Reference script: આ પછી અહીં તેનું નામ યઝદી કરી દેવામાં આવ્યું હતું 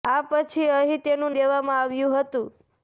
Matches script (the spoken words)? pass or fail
fail